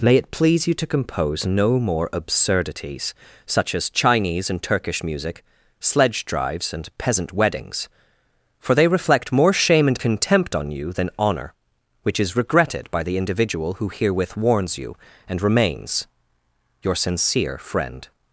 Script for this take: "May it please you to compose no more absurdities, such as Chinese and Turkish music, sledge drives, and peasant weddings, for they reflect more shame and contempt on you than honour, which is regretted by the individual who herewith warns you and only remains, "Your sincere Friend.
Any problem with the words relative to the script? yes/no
yes